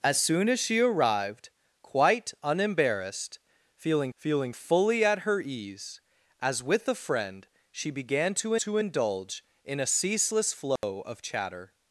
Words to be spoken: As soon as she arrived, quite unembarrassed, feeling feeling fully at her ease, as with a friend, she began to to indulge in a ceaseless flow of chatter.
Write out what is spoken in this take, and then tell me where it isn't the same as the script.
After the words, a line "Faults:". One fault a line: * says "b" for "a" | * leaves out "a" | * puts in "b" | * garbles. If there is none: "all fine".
As soon as she arrived, quite unembarrassed, feeling feeling fully at her ease, as with a friend, she began to to indulge in a ceaseless flow of chatter.
Faults:
all fine